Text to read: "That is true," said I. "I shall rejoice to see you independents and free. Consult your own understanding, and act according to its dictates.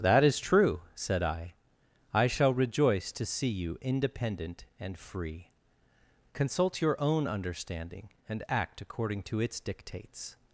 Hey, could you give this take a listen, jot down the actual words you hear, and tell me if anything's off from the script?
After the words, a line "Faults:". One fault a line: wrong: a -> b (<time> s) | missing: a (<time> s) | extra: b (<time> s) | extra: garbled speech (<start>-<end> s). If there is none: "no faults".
"That is true," said I. "I shall rejoice to see you independent and free. Consult your own understanding, and act according to its dictates.
Faults:
wrong: independents -> independent (3.8 s)